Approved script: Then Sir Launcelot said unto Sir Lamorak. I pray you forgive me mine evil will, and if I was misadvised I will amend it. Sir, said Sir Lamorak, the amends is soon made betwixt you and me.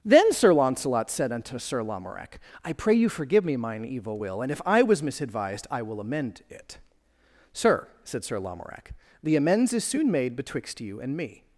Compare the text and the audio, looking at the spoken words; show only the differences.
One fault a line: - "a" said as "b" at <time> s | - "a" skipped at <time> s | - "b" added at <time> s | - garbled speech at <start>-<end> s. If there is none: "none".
none